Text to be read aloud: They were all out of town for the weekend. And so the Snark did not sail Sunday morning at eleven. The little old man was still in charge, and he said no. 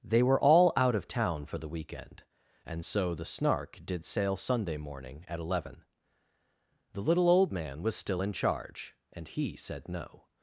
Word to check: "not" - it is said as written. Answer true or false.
false